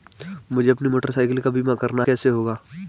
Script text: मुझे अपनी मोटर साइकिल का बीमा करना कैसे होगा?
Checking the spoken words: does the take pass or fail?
pass